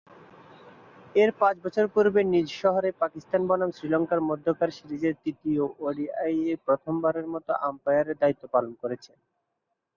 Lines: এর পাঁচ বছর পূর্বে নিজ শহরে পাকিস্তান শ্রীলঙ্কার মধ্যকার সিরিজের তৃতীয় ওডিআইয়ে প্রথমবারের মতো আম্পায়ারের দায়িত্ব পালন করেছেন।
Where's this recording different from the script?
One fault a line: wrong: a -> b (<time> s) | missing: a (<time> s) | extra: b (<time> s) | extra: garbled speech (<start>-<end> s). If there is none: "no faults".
extra: বনাম (3.5 s)